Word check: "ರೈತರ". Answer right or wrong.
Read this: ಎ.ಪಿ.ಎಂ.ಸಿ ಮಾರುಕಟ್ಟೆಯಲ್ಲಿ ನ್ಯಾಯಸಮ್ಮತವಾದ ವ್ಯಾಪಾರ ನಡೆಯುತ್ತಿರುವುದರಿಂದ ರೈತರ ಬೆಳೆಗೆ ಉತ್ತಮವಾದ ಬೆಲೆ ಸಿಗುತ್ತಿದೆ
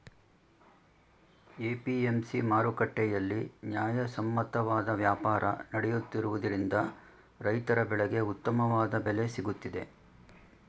right